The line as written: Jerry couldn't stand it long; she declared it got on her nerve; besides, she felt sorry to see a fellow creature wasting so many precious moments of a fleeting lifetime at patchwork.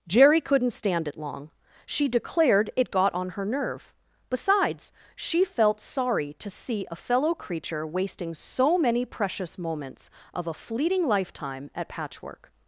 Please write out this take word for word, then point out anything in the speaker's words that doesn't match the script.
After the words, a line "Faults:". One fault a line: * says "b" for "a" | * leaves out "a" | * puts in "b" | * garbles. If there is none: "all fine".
Jerry couldn't stand it long; she declared it got on her nerve; besides, she felt sorry to see a fellow creature wasting so many precious moments of a fleeting lifetime at patchwork.
Faults:
all fine